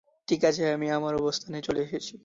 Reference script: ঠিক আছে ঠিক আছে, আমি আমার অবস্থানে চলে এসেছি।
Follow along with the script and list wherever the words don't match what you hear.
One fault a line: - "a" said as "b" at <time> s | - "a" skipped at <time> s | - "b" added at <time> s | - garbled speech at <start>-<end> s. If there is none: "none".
- "ঠিক আছে" skipped at 0.6 s